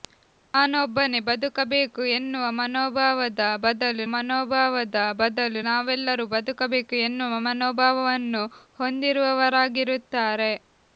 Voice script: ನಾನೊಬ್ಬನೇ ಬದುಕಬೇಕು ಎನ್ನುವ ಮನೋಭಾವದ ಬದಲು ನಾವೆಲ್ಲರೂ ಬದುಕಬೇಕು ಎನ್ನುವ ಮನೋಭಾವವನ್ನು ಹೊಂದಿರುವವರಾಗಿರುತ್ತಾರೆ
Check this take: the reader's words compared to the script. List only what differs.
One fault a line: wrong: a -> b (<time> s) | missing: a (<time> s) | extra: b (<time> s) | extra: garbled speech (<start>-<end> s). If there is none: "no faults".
extra: ಮನೋಭಾವದ ಬದಲು (4.1 s)